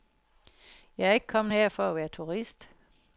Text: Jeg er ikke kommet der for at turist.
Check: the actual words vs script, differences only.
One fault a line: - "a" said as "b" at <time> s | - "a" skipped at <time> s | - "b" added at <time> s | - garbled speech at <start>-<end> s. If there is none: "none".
- "der" said as "her" at 1.5 s
- "være" added at 2.0 s